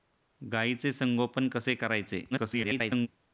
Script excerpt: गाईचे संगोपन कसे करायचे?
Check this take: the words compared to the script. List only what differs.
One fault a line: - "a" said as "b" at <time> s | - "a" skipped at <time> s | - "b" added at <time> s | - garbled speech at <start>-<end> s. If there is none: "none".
- garbled speech at 2.3-3.1 s